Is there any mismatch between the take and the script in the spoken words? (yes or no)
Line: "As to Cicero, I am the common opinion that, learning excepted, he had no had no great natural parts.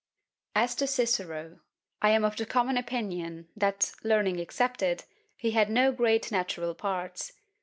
yes